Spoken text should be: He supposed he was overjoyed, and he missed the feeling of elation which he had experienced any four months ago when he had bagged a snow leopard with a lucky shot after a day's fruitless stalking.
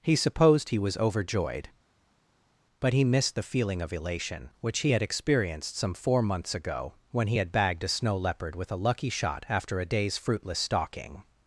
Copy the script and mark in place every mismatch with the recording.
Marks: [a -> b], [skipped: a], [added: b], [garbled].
He supposed he was overjoyed, [and -> but] he missed the feeling of elation which he had experienced [any -> some] four months ago when he had bagged a snow leopard with a lucky shot after a day's fruitless stalking.